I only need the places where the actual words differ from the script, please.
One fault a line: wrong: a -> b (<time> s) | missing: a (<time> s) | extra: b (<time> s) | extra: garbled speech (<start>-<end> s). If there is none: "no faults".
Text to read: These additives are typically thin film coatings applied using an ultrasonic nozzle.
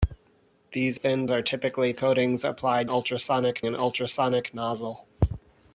wrong: additives -> thin (0.9 s)
missing: thin film (1.9 s)
wrong: using -> ultrasonic (2.8 s)